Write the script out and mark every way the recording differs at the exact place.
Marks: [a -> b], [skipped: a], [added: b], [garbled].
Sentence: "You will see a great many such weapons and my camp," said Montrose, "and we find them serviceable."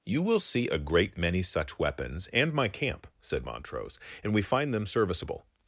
"You will see a great many such weapons and my camp," said Montrose, "and we find them serviceable."